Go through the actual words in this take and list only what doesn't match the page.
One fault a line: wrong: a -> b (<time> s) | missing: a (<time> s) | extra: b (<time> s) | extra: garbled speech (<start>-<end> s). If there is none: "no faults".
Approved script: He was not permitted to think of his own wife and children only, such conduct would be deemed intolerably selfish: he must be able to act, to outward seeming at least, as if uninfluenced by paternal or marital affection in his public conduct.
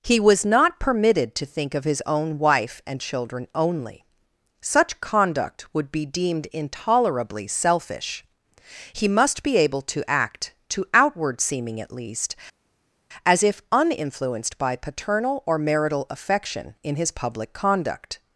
no faults